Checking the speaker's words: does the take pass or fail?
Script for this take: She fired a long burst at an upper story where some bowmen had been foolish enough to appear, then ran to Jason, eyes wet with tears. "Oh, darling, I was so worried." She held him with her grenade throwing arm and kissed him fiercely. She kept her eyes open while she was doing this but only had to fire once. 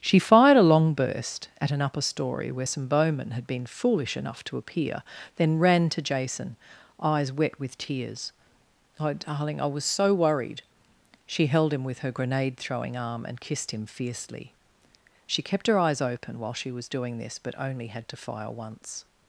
pass